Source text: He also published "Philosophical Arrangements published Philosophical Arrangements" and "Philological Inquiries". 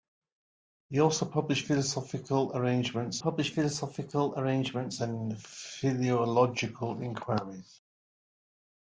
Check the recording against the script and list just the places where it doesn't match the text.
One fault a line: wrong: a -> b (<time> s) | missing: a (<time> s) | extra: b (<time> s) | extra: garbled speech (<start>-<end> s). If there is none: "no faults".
no faults